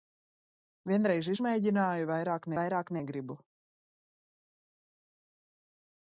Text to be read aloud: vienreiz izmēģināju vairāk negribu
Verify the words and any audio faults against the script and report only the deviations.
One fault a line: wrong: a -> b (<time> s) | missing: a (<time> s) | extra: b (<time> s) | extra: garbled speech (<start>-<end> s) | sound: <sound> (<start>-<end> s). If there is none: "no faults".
extra: vairāk (2.6 s)